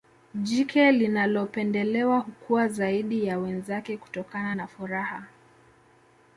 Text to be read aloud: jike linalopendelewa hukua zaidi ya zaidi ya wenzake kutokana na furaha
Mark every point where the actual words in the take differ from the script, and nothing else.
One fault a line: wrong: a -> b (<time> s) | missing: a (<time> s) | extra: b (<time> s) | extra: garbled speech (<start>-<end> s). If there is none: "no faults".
missing: zaidi ya (3.4 s)